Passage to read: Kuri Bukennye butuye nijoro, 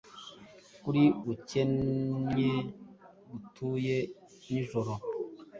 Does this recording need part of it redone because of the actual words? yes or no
no